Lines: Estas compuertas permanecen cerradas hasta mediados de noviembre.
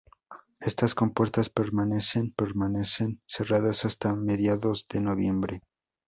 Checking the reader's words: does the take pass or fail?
fail